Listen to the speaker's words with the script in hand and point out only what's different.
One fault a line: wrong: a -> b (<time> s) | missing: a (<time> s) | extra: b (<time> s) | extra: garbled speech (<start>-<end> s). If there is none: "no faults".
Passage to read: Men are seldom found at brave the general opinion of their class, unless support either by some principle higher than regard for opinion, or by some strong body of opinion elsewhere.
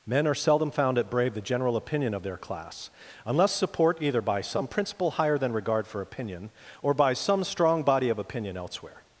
no faults